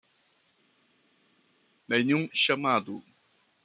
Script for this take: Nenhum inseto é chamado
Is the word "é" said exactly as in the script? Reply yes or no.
no